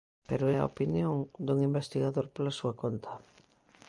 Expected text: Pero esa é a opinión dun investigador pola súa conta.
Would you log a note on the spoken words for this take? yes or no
yes